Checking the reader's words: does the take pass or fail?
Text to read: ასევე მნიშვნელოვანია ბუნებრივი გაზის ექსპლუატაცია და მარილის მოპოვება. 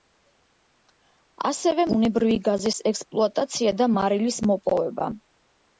fail